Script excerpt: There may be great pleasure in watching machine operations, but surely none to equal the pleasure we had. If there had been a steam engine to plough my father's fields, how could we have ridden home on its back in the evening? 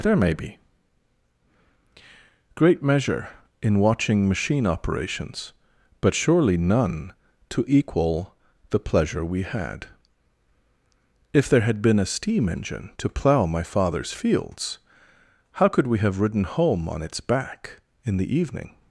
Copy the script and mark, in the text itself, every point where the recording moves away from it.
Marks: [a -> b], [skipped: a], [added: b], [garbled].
There may be great [pleasure -> measure] in watching machine operations, but surely none to equal the pleasure we had. If there had been a steam engine to plough my father's fields, how could we have ridden home on its back in the evening?